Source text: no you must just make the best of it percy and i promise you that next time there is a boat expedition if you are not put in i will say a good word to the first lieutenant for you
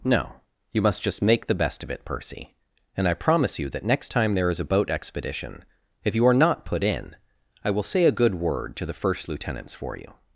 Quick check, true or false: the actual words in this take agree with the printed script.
false